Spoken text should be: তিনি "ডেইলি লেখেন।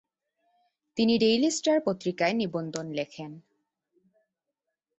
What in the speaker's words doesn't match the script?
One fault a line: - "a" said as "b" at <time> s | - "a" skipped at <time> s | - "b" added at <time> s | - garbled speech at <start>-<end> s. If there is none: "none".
- "স্টার পত্রিকায় নিবন্ধ" added at 1.5 s